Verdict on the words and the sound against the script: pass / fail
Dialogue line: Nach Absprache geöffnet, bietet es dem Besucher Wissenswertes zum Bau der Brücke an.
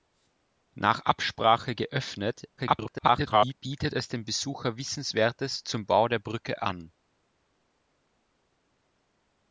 fail